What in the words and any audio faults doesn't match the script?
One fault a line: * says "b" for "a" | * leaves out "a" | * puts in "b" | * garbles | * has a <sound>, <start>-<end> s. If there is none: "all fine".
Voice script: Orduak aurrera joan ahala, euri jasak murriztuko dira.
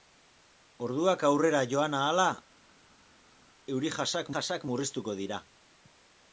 * puts in "jasak"